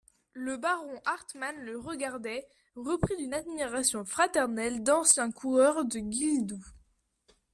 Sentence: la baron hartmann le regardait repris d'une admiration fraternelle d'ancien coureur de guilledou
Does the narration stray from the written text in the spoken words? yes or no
yes